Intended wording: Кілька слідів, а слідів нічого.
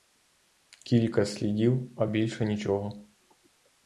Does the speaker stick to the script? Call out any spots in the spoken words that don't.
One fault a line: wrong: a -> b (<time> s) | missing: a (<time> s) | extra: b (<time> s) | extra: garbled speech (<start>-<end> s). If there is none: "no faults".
wrong: слідів -> більше (2.0 s)